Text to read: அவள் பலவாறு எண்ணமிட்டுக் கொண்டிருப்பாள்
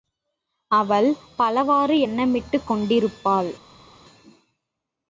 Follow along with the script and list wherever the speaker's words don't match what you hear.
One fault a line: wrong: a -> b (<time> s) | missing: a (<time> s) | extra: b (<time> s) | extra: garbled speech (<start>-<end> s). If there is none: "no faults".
no faults